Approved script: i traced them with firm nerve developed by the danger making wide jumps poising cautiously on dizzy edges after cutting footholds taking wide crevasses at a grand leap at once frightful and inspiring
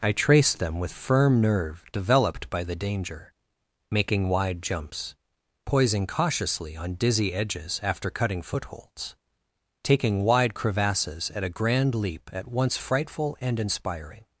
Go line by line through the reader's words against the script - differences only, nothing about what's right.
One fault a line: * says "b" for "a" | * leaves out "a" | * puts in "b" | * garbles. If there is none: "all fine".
all fine